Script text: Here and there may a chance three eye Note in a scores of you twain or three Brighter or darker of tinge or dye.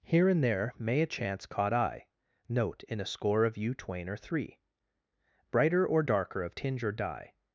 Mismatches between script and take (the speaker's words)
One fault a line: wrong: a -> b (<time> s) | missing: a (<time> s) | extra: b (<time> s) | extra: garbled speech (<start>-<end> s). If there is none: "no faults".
wrong: three -> caught (1.4 s)
wrong: scores -> score (3.0 s)